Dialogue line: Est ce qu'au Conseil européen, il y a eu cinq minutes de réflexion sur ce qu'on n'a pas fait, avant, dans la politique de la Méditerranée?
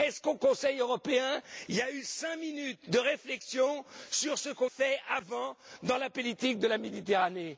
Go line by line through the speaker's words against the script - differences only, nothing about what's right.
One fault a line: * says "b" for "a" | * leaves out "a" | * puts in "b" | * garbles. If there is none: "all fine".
* leaves out "n'a pas"